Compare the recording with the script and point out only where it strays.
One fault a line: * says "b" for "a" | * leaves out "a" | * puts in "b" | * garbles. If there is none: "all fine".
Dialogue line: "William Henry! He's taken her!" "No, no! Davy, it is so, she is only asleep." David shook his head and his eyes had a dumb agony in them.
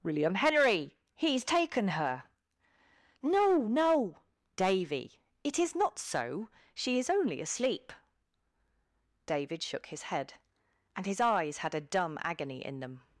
* puts in "not"